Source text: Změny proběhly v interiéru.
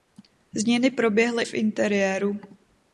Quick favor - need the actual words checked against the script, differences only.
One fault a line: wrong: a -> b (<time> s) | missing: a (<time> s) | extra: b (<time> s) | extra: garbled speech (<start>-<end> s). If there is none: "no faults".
no faults